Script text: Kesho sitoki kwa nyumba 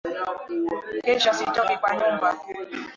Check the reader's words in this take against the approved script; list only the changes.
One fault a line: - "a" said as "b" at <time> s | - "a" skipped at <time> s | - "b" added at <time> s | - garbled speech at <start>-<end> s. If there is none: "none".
none